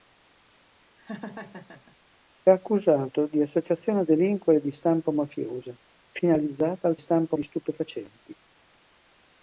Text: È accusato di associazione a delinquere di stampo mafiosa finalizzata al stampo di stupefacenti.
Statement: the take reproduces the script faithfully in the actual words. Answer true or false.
true